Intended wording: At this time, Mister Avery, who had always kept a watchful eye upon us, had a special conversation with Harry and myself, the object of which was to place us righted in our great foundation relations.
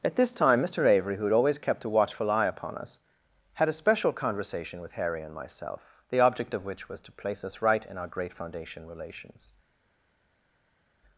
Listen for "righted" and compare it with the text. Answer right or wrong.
wrong